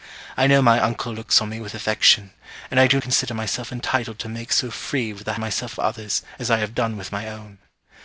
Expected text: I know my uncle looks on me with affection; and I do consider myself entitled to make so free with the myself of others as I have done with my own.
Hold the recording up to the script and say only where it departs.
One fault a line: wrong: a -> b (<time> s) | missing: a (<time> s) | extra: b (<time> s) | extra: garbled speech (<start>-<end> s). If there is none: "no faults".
no faults